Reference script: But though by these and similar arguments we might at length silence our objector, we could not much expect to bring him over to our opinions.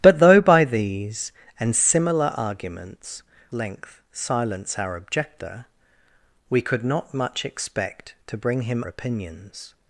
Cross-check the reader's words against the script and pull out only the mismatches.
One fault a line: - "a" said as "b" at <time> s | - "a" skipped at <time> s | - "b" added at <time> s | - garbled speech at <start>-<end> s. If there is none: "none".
- "we might at" skipped at 3.2 s
- "over to our" skipped at 8.8 s